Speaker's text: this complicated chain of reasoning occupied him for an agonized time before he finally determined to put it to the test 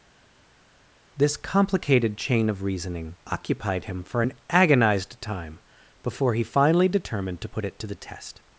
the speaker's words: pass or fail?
pass